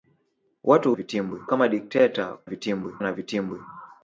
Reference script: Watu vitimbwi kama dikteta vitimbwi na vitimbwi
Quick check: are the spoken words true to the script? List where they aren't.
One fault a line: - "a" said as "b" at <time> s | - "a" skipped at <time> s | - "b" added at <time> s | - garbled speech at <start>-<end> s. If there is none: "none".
none